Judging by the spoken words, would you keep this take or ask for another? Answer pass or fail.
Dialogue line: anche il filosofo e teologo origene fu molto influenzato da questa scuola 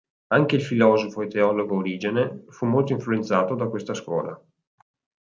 pass